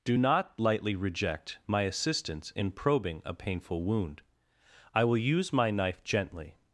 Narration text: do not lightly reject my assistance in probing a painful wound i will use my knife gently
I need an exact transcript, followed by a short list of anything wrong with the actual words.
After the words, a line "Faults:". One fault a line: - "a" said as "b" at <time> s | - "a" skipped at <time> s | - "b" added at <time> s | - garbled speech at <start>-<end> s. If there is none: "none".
do not lightly reject my assistance in probing a painful wound i will use my knife gently
Faults:
none